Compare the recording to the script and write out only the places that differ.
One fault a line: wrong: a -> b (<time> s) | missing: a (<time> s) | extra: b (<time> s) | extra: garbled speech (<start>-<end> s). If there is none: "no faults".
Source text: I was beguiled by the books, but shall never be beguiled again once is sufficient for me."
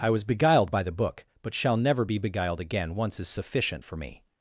wrong: books -> book (0.9 s)